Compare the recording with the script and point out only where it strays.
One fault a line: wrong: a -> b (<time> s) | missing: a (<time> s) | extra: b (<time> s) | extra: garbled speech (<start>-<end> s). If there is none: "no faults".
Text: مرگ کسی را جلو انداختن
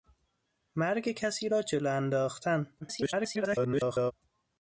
extra: garbled speech (2.8-4.1 s)